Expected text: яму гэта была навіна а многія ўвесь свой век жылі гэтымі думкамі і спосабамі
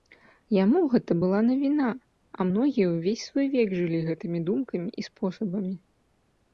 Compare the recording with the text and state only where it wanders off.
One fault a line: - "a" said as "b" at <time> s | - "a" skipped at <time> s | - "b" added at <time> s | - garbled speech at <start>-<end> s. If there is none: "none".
none